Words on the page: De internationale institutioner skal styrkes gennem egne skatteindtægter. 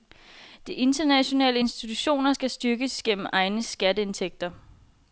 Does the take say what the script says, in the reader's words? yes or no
yes